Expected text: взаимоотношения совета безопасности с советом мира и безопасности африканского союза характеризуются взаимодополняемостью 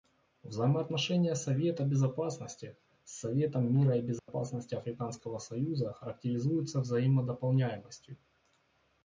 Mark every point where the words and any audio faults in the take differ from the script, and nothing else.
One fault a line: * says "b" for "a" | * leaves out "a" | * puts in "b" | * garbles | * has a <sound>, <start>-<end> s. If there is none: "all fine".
* has a dropout, 4.2-4.3 s